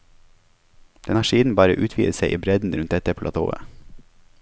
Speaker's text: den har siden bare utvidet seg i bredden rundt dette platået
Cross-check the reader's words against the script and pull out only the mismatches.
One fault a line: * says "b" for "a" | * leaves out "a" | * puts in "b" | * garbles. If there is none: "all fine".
all fine